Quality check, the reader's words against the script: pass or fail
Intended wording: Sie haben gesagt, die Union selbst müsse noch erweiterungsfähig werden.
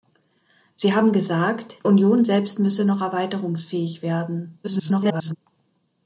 fail